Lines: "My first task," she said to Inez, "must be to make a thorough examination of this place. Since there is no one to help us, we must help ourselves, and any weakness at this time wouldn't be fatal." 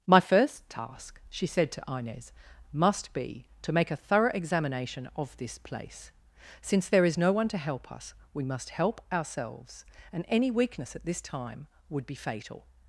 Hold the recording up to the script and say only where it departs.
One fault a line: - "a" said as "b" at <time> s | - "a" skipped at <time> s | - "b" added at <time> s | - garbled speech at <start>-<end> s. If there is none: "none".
- "wouldn't" said as "would" at 11.9 s